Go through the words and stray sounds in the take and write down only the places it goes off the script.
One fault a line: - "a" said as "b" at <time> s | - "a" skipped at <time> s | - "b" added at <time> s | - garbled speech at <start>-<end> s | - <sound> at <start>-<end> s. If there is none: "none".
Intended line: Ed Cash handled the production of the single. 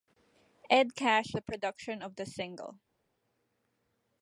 - "handled" skipped at 1.4 s